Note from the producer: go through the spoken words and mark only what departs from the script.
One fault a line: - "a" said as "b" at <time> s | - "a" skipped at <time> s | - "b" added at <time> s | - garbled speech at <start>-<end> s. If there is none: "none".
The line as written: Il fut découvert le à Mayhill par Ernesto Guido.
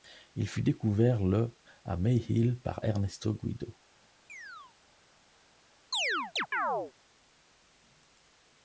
none